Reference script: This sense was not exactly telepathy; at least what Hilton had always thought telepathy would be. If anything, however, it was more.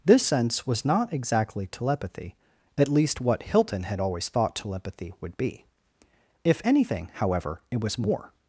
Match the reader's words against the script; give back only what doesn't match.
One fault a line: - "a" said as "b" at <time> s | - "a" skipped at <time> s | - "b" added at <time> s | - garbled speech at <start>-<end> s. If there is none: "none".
none